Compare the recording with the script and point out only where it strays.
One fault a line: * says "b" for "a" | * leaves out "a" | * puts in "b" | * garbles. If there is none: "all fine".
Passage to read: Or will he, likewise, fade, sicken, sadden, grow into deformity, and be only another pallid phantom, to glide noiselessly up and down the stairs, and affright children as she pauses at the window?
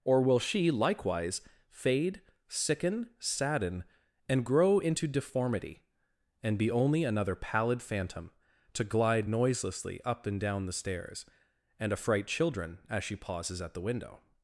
* says "she" for "he"
* puts in "and"